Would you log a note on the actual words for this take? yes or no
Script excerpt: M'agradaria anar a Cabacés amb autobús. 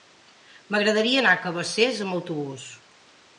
no